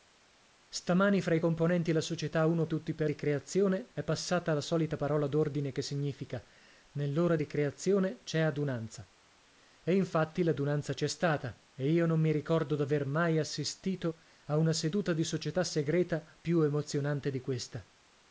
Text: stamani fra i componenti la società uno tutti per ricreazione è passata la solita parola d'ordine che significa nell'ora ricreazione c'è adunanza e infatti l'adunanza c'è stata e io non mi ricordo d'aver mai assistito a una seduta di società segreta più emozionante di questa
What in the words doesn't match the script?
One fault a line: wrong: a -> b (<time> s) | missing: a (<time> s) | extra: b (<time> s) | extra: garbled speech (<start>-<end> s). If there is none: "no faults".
no faults